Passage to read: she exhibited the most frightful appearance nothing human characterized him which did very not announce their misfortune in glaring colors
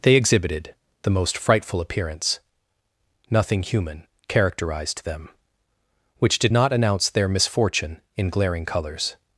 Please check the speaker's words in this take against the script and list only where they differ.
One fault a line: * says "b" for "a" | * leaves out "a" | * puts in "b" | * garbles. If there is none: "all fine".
* says "they" for "she"
* says "them" for "him"
* leaves out "very"